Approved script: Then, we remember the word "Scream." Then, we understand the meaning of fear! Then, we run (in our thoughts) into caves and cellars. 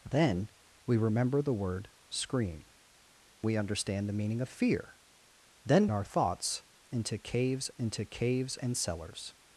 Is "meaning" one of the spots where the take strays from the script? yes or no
no